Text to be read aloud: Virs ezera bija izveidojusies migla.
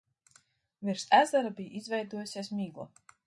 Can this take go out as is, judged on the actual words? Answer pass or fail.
pass